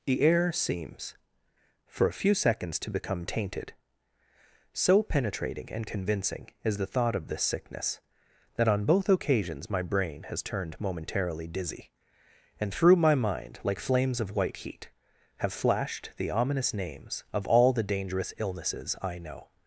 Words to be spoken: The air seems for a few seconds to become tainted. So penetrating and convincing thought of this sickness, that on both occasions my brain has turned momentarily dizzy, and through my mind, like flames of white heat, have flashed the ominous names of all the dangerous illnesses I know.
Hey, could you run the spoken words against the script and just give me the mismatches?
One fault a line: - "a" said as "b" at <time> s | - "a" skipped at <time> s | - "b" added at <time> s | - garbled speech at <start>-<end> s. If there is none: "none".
- "is the" added at 6.6 s